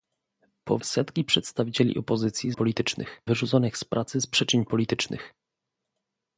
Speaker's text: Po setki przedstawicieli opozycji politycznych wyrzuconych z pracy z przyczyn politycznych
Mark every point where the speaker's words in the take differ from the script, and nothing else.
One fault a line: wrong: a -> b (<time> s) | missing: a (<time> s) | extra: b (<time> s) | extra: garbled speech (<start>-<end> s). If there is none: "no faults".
no faults